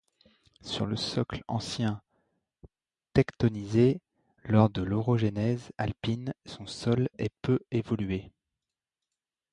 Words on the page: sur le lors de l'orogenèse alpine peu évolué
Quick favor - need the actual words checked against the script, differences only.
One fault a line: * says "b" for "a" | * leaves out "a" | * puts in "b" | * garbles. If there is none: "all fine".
* puts in "socle ancien tectonisé"
* puts in "son sol est"